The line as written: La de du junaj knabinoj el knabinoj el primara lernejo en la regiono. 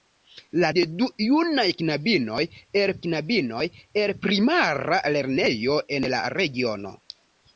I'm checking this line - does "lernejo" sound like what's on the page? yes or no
yes